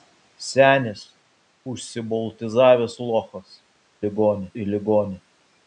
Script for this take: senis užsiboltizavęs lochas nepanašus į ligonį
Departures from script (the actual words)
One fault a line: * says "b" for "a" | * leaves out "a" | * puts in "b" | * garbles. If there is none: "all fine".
* says "ligonį" for "nepanašus"